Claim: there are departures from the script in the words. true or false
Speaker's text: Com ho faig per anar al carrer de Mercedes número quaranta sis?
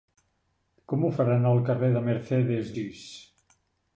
true